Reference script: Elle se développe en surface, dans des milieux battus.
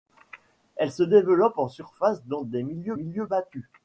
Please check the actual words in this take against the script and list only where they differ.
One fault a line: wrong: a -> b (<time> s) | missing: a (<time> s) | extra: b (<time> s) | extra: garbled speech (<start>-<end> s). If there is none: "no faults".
extra: milieux (2.9 s)